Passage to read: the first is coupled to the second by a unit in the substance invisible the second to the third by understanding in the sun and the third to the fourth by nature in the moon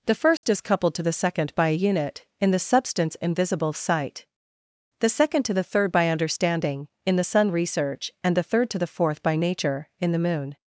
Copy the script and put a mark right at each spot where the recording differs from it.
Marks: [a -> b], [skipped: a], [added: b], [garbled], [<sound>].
the first [dropout] is coupled to the second by a unit in the substance invisible [added: sight] the second to the third by understanding in the sun [added: research] and the third to the fourth by nature in the moon